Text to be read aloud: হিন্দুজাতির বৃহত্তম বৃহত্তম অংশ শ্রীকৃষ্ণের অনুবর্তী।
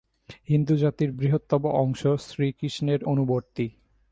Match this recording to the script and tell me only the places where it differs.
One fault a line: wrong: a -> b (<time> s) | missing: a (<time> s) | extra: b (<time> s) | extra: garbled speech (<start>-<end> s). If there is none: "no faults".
missing: বৃহত্তম (1.6 s)